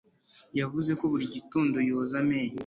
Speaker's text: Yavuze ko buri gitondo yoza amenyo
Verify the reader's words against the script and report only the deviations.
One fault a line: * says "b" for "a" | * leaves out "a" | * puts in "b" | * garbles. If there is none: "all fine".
all fine